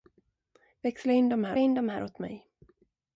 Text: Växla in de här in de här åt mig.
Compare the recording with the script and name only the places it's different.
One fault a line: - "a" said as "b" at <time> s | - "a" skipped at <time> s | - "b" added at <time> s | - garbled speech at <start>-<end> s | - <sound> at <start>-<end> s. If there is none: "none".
none